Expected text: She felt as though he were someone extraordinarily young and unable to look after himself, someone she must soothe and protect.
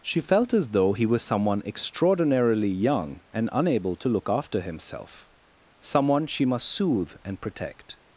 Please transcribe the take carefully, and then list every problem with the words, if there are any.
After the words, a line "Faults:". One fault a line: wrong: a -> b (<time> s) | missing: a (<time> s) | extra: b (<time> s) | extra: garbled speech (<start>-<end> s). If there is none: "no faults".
She felt as though he was someone extraordinarily young and unable to look after himself, someone she must soothe and protect.
Faults:
wrong: were -> was (1.0 s)